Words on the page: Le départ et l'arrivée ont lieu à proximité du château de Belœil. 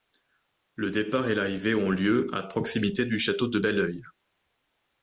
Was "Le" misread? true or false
false